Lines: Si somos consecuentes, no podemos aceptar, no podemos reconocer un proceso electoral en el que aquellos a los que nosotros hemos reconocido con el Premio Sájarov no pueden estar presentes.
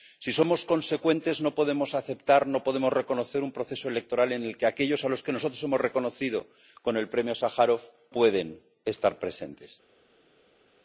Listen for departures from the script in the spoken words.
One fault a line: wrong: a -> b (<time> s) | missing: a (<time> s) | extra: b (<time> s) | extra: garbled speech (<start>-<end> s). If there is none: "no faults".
missing: no (7.8 s)